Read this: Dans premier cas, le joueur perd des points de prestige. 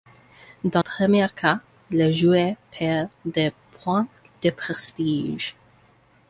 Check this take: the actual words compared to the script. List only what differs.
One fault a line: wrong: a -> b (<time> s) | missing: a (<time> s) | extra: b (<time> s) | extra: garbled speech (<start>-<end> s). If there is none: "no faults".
no faults